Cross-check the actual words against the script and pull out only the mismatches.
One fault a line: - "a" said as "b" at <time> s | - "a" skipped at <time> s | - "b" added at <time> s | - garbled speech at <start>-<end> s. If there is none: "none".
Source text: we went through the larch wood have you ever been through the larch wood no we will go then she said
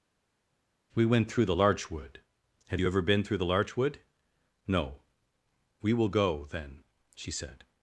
none